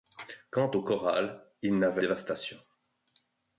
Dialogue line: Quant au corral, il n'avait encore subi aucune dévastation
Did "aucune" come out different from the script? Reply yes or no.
yes